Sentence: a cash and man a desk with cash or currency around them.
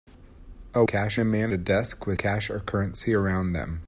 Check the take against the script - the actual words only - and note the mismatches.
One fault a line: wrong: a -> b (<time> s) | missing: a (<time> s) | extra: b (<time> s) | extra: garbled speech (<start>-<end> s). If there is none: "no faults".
no faults